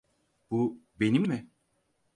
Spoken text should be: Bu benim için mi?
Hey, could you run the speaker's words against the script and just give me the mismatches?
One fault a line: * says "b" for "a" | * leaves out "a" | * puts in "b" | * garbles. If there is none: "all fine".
* leaves out "için"